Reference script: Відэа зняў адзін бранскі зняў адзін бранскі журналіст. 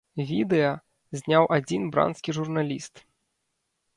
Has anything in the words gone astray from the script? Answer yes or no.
yes